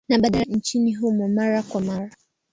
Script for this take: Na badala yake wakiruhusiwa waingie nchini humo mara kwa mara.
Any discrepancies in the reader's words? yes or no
yes